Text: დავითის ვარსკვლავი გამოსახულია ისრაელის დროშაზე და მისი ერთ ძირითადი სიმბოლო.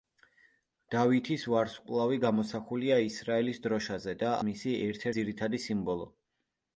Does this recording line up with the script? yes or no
yes